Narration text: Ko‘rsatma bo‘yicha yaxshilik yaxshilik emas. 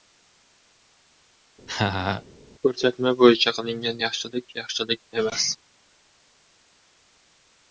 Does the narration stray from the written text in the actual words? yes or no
yes